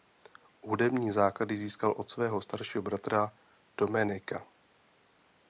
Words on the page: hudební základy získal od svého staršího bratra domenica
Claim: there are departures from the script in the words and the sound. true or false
false